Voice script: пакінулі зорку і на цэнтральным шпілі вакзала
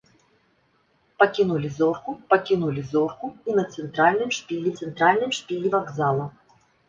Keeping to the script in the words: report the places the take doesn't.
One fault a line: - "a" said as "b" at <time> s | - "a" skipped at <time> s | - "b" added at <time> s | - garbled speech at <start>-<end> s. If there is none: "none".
- "пакінулі зорку" added at 2.3 s
- "цэнтральным шпілі" added at 4.8 s